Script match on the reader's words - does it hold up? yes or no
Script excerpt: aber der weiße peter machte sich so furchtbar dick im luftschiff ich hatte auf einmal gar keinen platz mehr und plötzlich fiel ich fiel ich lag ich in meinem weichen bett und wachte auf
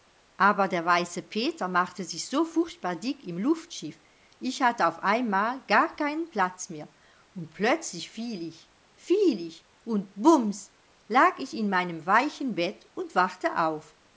no